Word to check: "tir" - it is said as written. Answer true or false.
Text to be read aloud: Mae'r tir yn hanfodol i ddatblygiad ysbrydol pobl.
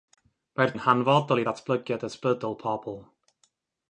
false